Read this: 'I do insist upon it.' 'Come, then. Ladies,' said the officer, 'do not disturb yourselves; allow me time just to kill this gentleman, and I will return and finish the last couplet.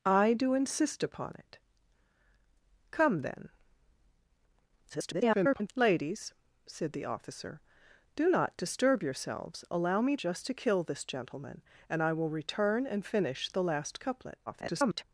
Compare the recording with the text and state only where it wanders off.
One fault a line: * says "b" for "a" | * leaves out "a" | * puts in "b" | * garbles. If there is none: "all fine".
* garbles
* leaves out "time"
* garbles